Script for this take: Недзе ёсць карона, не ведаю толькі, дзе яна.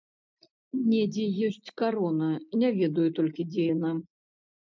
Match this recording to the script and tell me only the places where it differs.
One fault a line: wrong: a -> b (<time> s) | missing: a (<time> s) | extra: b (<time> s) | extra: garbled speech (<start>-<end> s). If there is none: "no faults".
no faults